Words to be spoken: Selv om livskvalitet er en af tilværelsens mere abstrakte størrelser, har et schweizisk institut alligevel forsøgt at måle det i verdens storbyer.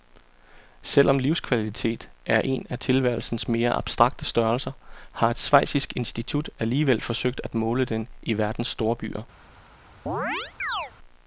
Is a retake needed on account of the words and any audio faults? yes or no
yes